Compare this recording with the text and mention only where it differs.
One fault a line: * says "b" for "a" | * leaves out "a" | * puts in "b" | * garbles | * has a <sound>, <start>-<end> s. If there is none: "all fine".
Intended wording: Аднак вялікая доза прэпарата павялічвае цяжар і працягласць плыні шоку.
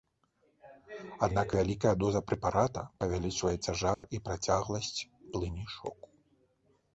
* has a dropout, 3.9-4.0 s